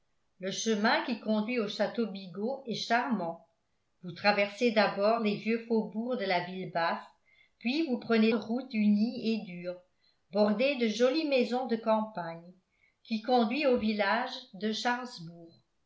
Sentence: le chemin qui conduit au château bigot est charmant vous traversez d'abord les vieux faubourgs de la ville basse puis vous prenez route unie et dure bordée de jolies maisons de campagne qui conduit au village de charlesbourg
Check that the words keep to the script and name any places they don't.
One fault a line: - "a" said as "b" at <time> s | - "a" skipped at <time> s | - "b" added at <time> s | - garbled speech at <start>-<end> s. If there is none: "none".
none